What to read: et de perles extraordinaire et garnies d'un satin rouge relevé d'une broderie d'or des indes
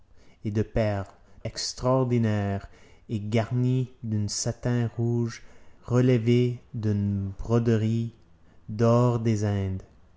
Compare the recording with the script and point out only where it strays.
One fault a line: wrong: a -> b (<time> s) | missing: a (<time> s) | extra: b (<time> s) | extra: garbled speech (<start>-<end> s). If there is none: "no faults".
no faults